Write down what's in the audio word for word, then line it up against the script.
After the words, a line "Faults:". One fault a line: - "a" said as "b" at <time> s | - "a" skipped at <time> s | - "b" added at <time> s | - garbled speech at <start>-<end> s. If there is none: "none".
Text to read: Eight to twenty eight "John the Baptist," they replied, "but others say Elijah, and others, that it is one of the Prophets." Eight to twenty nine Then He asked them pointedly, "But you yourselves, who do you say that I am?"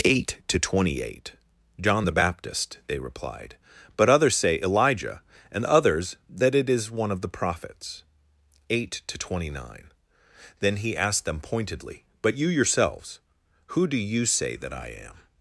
Eight to twenty eight "John the Baptist," they replied, "but others say Elijah, and others, that it is one of the Prophets." Eight to twenty nine Then He asked them pointedly, "But you yourselves, who do you say that I am?"
Faults:
none